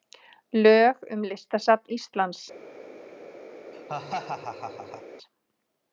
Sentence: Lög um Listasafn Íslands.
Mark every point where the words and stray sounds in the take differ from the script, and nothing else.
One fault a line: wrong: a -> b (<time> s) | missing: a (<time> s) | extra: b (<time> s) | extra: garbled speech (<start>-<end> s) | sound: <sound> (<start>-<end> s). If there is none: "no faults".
sound: laugh (3.7-5.0 s)